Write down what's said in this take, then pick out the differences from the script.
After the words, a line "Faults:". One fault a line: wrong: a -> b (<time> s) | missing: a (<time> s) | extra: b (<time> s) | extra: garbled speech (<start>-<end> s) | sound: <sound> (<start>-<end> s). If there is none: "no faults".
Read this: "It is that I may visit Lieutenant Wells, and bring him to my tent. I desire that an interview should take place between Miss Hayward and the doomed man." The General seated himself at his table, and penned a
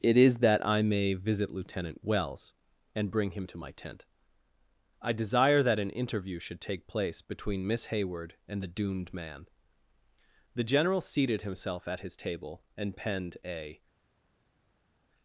"It is that I may visit Lieutenant Wells, and bring him to my tent. I desire that an interview should take place between Miss Hayward and the doomed man." The General seated himself at his table, and penned a
Faults:
no faults